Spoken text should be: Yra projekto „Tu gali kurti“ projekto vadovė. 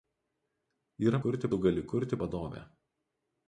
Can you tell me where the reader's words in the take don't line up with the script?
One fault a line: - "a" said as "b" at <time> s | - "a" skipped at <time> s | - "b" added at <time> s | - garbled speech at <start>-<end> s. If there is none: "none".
- "projekto" said as "kurti" at 1.3 s
- "projekto" skipped at 2.2 s